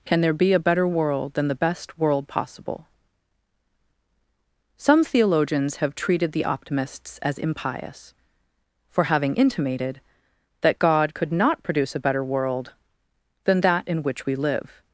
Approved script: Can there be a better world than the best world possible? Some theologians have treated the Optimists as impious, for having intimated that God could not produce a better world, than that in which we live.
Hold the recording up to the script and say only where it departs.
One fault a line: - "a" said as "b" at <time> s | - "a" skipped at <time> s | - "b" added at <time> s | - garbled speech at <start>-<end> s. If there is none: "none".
none